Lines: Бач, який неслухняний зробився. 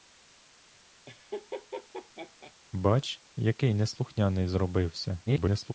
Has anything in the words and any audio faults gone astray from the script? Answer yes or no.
yes